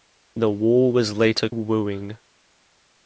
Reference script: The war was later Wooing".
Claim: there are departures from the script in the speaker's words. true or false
false